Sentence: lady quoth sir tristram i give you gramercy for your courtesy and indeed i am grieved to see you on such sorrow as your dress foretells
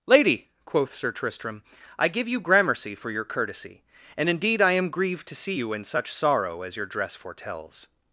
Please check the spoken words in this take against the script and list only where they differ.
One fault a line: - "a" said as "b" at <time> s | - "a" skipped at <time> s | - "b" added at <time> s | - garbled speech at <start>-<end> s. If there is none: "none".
- "on" said as "in" at 5.7 s